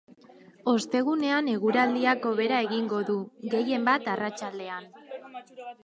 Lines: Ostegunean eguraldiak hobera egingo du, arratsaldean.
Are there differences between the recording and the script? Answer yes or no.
yes